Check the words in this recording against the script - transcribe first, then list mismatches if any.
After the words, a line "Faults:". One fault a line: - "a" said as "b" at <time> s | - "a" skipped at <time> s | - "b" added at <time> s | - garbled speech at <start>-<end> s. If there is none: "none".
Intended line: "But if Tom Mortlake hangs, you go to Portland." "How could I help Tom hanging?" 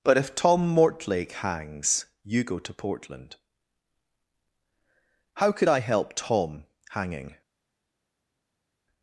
"But if Tom Mortlake hangs, you go to Portland." "How could I help Tom hanging?"
Faults:
none